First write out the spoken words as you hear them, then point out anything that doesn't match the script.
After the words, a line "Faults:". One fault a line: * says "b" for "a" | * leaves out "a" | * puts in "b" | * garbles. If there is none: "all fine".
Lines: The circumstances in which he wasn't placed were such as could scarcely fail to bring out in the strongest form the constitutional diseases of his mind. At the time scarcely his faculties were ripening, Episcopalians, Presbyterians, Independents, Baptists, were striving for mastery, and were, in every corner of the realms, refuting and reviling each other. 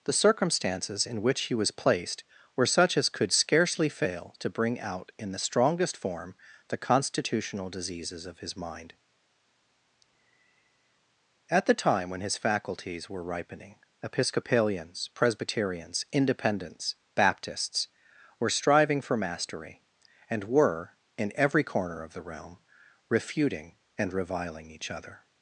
The circumstances in which he was placed were such as could scarcely fail to bring out in the strongest form the constitutional diseases of his mind. At the time when his faculties were ripening, Episcopalians, Presbyterians, Independents, Baptists, were striving for mastery, and were, in every corner of the realm, refuting and reviling each other.
Faults:
* says "was" for "wasn't"
* says "when" for "scarcely"
* says "realm" for "realms"